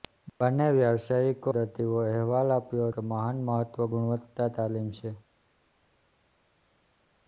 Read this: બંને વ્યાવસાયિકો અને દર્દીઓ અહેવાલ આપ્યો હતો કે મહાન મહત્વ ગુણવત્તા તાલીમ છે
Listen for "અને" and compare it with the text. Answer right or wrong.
wrong